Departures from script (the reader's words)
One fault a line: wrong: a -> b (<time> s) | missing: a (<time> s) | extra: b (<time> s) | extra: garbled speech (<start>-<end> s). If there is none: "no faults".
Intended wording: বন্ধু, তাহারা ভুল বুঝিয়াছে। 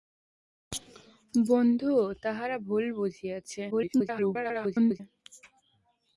extra: garbled speech (3.7-5.0 s)